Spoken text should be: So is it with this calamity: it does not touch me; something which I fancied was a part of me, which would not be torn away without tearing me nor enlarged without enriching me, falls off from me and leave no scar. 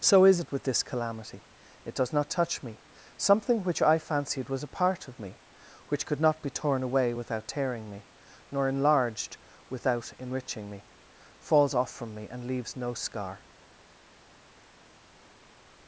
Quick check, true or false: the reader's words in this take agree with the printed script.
false